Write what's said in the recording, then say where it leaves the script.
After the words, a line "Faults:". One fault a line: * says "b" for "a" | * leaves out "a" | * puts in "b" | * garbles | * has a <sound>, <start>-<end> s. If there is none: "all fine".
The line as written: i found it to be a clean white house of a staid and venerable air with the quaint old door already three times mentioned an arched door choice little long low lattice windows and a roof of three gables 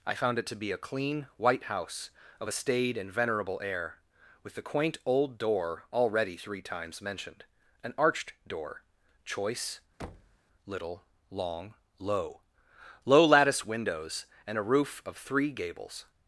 i found it to be a clean white house of a staid and venerable air with the quaint old door already three times mentioned an arched door choice little long low low lattice windows and a roof of three gables
Faults:
* has a thud, 10.0-10.4 s
* puts in "low"